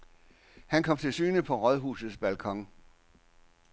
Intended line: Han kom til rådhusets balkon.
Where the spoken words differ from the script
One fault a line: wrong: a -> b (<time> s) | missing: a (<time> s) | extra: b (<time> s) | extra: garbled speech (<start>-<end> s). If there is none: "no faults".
extra: syne på (1.1 s)